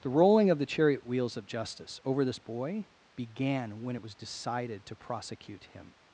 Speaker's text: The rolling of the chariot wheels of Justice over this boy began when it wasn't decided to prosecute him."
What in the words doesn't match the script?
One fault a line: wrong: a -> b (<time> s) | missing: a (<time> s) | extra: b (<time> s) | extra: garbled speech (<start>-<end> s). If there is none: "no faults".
wrong: wasn't -> was (4.0 s)